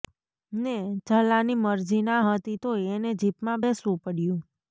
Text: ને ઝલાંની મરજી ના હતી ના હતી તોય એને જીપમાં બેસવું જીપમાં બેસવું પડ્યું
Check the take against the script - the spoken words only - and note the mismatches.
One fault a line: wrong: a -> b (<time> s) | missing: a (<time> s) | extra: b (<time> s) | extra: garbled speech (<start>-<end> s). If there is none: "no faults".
missing: ના હતી (2.6 s)
missing: જીપમાં બેસવું (4.0 s)